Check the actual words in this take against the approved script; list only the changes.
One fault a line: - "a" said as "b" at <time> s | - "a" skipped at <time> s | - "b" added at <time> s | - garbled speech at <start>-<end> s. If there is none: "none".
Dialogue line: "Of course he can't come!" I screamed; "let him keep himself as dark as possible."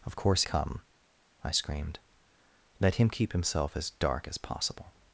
- "he can't" skipped at 0.4 s